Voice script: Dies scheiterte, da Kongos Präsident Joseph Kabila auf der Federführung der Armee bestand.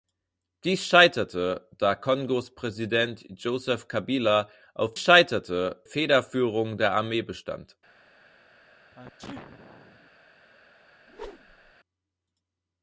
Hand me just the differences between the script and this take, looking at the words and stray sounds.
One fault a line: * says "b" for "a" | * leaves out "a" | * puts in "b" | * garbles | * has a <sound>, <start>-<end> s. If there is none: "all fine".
* says "scheiterte" for "der"
* has a sneeze, 8.9-10.1 s
* has a whoosh, 11.1-11.7 s